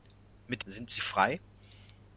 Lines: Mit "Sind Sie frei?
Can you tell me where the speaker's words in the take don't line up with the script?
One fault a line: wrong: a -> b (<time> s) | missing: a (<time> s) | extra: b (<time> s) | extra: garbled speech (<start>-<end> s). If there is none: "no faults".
no faults